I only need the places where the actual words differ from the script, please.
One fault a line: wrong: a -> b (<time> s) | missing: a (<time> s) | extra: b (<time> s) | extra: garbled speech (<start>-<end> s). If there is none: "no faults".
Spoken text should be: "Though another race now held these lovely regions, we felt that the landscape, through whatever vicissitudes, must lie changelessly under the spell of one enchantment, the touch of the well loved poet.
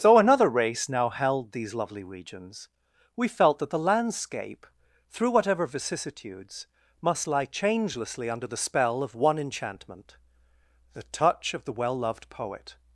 wrong: Though -> So (0.0 s)